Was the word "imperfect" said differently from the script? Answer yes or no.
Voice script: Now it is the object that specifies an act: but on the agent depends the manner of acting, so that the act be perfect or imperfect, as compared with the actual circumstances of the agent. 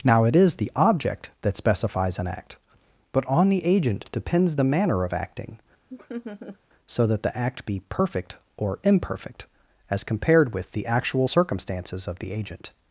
no